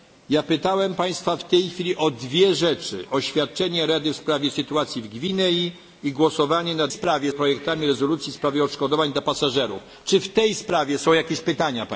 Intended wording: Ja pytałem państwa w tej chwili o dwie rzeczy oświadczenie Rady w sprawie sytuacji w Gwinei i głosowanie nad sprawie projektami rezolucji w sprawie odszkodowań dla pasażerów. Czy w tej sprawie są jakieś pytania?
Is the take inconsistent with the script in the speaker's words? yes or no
no